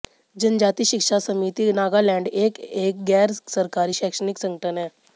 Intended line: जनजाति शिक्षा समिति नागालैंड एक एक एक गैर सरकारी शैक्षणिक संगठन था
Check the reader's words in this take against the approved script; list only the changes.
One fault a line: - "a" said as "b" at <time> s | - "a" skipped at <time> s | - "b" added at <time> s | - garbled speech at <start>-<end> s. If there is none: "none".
- "एक" skipped at 3.0 s
- "था" said as "है" at 4.8 s